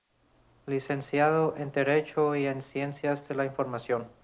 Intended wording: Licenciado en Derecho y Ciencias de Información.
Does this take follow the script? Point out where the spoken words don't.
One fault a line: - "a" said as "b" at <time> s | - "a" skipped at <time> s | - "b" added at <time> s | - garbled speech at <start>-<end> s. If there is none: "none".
- "en" added at 2.5 s
- "la" added at 3.4 s